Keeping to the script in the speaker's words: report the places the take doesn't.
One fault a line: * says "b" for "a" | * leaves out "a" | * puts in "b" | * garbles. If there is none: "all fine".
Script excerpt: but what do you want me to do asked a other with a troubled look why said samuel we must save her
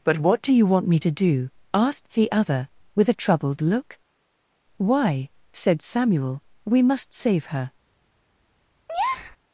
* says "the" for "a"